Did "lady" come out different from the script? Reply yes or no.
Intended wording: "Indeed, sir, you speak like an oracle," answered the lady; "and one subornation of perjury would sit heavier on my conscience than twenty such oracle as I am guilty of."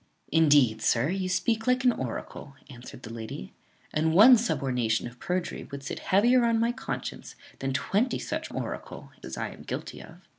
no